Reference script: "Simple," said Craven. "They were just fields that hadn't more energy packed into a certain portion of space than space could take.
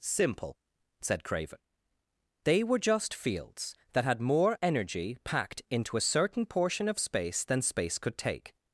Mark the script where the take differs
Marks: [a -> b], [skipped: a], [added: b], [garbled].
"Simple," said Craven. "They were just fields that [hadn't -> had] more energy packed into a certain portion of space than space could take.